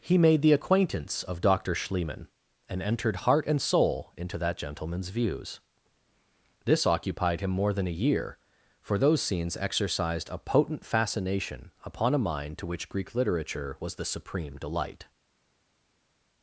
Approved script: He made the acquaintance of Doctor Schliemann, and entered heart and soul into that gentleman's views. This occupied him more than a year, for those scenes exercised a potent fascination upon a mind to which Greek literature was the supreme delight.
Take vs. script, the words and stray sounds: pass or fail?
pass